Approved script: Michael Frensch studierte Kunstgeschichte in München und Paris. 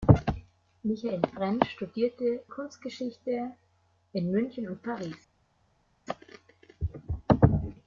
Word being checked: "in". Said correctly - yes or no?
yes